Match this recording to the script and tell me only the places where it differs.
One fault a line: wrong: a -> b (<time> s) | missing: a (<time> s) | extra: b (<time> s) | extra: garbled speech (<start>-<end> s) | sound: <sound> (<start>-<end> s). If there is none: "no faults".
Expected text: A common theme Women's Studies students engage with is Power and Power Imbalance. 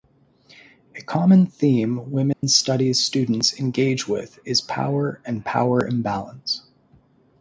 sound: dropout (2.3-2.4 s)